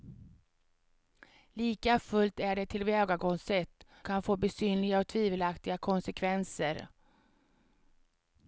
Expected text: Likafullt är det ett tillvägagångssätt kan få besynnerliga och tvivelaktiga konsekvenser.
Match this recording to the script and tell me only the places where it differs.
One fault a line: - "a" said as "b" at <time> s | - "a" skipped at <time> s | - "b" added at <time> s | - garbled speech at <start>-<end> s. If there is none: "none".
none